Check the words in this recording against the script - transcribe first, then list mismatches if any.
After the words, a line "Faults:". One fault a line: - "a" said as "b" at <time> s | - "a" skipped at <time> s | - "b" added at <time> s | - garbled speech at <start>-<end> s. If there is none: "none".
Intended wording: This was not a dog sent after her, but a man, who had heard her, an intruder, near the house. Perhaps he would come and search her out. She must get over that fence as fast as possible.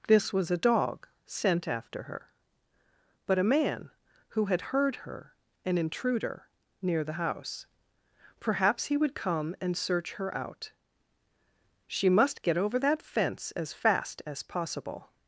This was a dog sent after her, but a man, who had heard her, an intruder, near the house. Perhaps he would come and search her out. She must get over that fence as fast as possible.
Faults:
- "not" skipped at 0.5 s